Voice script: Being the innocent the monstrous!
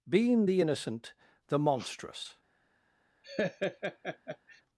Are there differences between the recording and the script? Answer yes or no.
no